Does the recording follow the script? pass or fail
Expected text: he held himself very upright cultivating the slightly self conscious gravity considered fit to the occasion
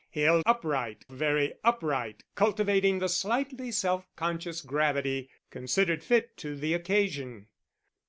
fail